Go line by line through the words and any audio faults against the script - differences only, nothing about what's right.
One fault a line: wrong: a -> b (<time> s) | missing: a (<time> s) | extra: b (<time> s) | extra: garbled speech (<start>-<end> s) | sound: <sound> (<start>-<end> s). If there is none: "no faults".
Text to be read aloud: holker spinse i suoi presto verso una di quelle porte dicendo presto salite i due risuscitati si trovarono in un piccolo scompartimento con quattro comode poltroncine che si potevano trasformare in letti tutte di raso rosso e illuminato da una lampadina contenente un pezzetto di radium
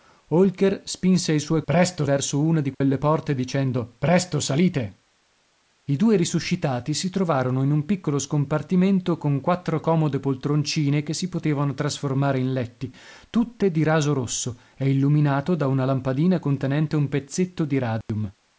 sound: dropout (2.7-2.8 s)
sound: dropout (18.0-18.1 s)